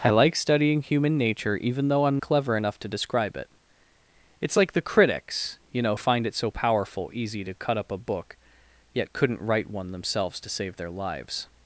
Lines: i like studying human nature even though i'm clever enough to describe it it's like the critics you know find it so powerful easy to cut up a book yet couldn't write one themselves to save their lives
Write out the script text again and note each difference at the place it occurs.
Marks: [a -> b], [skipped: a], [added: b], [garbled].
i like studying human nature even though i'm clever enough to describe it it's like the critics you know find it so powerful easy to cut up a book yet couldn't write one themselves to save their lives